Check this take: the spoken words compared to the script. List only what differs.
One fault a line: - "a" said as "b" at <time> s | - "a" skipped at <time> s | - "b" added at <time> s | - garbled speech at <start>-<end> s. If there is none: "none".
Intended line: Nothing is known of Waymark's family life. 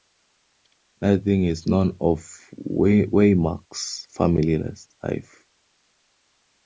none